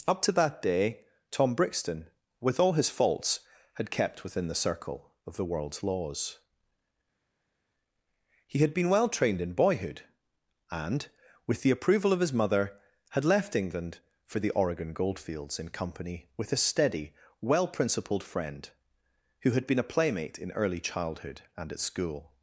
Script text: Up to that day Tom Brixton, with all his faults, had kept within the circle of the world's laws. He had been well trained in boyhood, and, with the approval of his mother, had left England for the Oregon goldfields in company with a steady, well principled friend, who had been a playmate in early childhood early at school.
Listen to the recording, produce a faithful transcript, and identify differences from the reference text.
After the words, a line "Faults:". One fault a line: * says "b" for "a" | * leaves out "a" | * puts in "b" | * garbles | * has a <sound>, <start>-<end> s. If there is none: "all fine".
Up to that day Tom Brixton, with all his faults, had kept within the circle of the world's laws. He had been well trained in boyhood, and, with the approval of his mother, had left England for the Oregon goldfields in company with a steady, well principled friend, who had been a playmate in early childhood and at school.
Faults:
* says "and" for "early"